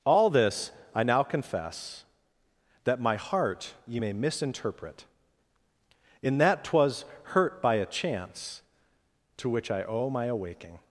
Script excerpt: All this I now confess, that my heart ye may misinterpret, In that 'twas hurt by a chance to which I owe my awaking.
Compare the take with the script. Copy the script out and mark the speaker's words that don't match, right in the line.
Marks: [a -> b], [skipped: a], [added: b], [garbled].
All this I now confess, that my heart ye may misinterpret, In that 'twas hurt by a chance to which I owe my awaking.